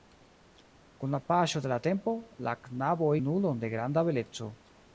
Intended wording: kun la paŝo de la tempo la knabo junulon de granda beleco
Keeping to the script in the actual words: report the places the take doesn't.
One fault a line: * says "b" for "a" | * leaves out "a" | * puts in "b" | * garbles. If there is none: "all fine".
all fine